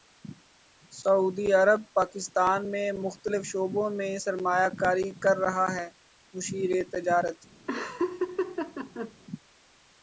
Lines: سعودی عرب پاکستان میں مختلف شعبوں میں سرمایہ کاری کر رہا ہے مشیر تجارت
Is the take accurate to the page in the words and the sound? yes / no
no